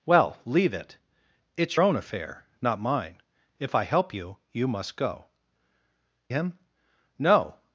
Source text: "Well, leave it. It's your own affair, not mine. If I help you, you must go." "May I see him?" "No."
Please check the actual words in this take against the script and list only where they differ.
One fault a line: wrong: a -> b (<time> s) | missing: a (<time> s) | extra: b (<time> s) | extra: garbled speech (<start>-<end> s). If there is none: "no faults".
missing: your (1.8 s)
missing: May I see (5.3 s)